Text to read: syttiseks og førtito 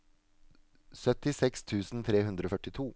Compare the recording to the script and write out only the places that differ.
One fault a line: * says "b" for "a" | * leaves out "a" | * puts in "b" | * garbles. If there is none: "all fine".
* puts in "tusen tre hundre"